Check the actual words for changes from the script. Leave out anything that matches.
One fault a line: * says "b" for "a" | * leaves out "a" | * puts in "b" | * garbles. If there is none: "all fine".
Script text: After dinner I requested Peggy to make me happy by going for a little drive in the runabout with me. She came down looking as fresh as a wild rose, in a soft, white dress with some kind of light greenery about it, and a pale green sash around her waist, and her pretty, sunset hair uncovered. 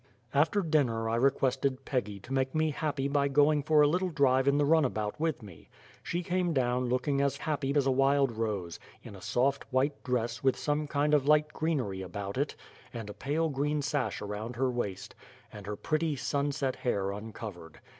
* says "happy" for "fresh"